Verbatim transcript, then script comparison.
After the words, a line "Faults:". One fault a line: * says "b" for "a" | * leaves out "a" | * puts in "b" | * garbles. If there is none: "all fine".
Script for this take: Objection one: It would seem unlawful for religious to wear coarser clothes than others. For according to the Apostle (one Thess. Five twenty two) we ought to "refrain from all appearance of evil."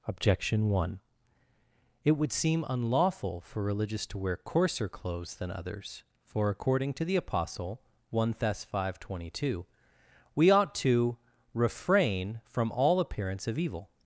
Objection one: It would seem unlawful for religious to wear coarser clothes than others. For according to the Apostle (one Thess. Five twenty two) we ought to "refrain from all appearance of evil."
Faults:
all fine